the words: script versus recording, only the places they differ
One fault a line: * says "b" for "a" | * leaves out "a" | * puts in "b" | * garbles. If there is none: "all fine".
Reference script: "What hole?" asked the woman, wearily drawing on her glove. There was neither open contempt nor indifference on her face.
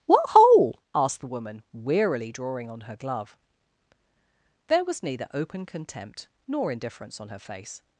all fine